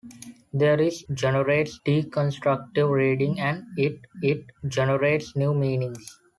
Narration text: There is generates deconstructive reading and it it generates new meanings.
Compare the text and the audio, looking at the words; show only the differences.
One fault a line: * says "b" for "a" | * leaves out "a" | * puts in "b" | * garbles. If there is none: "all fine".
all fine